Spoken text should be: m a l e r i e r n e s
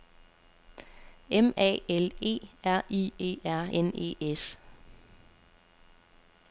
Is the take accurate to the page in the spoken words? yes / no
yes